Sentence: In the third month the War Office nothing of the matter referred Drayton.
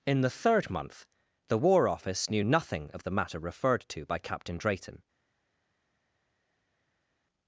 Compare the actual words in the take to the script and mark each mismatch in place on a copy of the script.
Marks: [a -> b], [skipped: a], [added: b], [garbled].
In the third month the War Office [added: knew] nothing of the matter referred [added: to by Captain] Drayton.